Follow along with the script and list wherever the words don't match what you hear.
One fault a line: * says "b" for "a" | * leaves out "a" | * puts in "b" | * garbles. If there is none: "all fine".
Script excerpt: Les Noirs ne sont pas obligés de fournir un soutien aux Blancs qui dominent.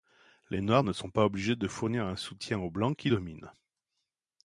all fine